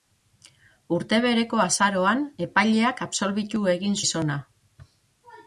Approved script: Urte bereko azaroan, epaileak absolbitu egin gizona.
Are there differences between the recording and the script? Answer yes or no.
no